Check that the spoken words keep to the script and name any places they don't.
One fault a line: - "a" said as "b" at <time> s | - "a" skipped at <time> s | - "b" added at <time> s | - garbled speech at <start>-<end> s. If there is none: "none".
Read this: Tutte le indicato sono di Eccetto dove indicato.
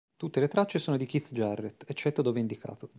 - "indicato" said as "tracce" at 0.5 s
- "Keith Jarrett" added at 1.1 s